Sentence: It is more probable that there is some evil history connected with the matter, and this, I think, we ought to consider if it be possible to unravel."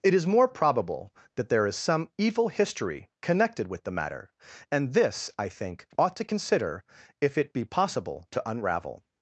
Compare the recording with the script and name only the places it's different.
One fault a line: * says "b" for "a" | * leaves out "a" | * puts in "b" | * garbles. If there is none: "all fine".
* leaves out "we"